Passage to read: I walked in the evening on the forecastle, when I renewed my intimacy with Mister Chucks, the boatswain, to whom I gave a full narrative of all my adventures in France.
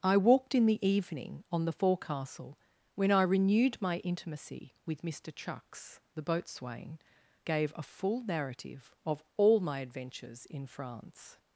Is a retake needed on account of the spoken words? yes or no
yes